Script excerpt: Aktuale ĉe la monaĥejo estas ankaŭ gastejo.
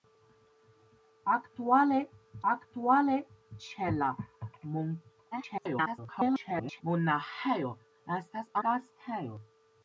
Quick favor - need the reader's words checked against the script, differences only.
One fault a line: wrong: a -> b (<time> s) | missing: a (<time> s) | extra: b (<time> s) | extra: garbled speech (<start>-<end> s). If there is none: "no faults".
extra: aktuale (2.5 s)
extra: garbled speech (5.3-6.8 s)
missing: ankaŭ (8.5 s)